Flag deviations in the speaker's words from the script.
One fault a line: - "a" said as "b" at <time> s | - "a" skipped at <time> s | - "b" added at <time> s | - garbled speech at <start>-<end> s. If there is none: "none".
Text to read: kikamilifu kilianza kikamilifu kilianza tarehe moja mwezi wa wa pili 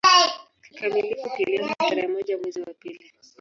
- "kikamilifu kilianza" skipped at 1.8 s
- "wa" skipped at 2.7 s